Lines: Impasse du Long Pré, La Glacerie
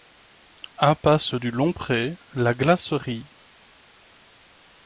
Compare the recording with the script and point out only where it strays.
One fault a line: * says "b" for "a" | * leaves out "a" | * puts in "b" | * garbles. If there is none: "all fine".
all fine